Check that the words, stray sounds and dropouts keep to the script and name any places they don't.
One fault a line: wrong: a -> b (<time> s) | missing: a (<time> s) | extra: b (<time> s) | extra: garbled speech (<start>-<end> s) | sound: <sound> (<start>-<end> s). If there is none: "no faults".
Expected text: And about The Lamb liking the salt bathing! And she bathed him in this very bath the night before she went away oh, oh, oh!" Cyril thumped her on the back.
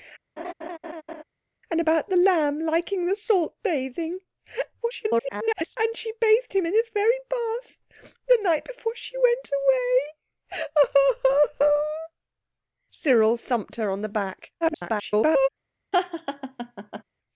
sound: laugh (0.4-1.2 s)
extra: garbled speech (4.8-5.8 s)
extra: garbled speech (14.6-15.5 s)
sound: laugh (15.9-17.0 s)